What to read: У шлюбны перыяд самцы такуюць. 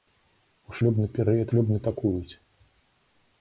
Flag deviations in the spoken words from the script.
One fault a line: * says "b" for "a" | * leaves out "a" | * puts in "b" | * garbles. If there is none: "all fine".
* says "шлюбны" for "самцы"